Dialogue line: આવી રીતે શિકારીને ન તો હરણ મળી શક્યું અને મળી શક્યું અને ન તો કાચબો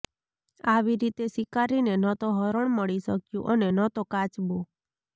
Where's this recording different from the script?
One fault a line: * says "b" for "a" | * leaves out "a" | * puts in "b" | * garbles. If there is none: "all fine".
* leaves out "મળી શક્યું અને"